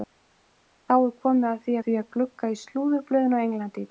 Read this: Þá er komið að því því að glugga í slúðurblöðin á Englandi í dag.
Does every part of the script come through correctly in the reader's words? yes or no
yes